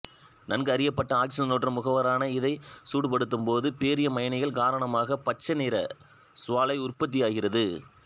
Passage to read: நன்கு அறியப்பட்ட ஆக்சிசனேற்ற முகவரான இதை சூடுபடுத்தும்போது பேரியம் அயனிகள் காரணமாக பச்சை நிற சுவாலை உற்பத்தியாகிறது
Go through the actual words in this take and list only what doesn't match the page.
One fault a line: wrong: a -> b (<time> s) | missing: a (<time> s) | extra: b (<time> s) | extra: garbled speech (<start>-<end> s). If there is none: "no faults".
no faults